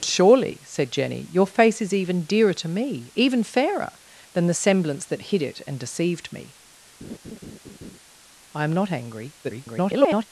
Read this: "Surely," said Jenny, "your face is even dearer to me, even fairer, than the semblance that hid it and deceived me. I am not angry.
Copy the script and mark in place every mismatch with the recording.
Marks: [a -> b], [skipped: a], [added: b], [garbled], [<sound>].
"Surely," said Jenny, "your face is even dearer to me, even fairer, than the semblance that hid it and deceived me. [laugh] I am not angry. [garbled]